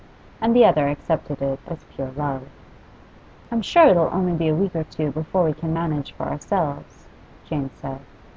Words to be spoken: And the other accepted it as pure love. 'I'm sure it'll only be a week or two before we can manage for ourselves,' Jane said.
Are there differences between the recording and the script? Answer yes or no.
no